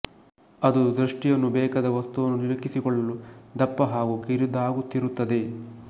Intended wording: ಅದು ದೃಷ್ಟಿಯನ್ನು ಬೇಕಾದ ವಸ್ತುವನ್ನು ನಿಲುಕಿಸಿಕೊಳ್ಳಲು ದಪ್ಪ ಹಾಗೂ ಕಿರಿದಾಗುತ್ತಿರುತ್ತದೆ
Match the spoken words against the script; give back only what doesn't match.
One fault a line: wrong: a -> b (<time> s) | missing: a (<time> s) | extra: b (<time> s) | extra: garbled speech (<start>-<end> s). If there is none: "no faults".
no faults